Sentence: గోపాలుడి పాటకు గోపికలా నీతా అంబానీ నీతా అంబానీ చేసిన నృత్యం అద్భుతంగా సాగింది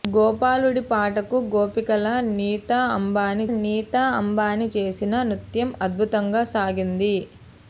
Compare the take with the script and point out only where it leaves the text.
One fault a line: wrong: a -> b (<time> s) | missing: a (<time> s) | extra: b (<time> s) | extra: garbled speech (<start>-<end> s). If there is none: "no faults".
no faults